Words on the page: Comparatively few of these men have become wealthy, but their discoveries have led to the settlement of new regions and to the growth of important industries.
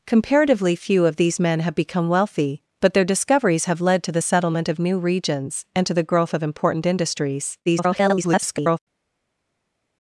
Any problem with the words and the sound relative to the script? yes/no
yes